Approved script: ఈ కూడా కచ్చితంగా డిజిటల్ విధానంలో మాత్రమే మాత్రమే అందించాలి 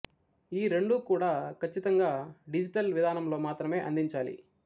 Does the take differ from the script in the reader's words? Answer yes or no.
yes